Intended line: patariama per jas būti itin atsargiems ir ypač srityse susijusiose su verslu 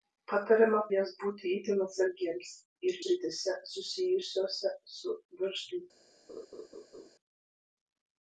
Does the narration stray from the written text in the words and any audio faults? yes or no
yes